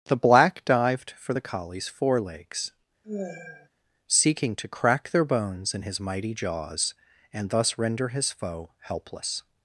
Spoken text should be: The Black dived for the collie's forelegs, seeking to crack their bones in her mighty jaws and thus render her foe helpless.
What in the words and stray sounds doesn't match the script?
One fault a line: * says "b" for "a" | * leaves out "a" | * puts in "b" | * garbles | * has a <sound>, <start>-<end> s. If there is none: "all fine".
* has a sigh, 3.0-3.7 s
* says "his" for "her"
* says "his" for "her"